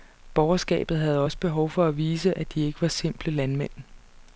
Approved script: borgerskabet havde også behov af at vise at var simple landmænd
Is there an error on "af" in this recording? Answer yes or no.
yes